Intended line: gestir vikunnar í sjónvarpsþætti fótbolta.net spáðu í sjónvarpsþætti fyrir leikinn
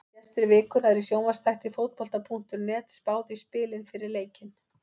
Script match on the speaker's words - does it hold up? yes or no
no